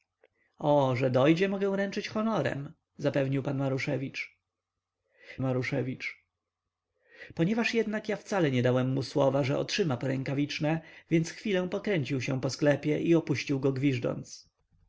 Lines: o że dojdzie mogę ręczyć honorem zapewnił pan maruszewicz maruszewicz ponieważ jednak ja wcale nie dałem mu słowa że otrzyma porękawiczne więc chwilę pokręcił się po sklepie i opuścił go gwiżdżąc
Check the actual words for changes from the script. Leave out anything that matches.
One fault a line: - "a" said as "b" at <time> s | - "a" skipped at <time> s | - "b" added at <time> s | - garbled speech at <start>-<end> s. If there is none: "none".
none